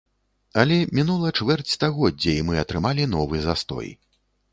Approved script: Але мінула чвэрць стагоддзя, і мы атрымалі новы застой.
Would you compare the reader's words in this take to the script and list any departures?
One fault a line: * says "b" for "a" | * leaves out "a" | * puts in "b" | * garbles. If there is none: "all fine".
all fine